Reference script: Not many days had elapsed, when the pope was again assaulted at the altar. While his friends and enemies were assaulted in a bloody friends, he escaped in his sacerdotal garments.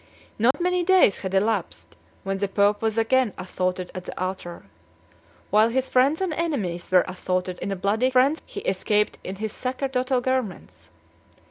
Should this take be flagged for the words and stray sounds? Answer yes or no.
yes